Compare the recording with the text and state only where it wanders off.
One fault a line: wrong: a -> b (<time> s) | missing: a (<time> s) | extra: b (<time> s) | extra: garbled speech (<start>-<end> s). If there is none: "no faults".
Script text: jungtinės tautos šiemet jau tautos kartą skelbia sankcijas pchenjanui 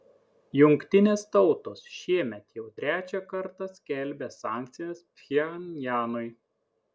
wrong: tautos -> trečią (2.8 s)